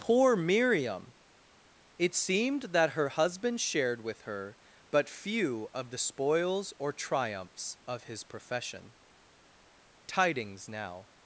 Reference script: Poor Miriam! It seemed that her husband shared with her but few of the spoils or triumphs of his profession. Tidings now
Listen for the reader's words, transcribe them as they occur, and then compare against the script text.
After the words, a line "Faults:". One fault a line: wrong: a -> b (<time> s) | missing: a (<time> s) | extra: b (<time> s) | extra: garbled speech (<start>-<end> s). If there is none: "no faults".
Poor Miriam! It seemed that her husband shared with her but few of the spoils or triumphs of his profession. Tidings now
Faults:
no faults